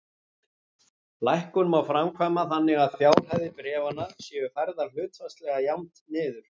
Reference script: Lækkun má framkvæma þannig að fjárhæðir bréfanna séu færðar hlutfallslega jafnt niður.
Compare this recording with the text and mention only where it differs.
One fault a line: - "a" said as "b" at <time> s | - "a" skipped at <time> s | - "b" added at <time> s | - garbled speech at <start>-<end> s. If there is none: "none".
- "að" added at 2.9 s